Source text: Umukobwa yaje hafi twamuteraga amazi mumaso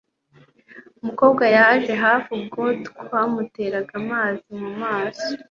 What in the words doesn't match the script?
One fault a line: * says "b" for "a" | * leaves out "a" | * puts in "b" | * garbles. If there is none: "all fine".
* puts in "ubwo"